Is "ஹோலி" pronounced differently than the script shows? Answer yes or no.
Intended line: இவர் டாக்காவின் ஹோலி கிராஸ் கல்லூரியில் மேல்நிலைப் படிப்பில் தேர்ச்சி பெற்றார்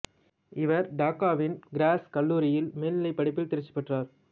yes